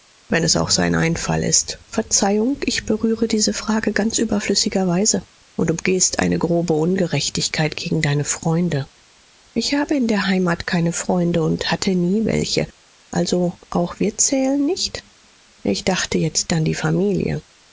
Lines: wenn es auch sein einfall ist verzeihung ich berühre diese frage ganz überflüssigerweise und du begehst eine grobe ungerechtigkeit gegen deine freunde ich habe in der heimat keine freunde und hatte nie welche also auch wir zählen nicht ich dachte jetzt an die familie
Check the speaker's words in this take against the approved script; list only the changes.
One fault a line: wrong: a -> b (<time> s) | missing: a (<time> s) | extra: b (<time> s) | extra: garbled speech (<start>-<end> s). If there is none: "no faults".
no faults